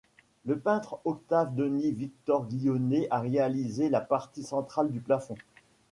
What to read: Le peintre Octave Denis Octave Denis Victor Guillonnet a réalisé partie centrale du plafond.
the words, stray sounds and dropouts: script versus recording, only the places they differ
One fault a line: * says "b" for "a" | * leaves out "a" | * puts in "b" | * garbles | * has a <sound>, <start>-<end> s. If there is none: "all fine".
* leaves out "Octave Denis"
* puts in "la"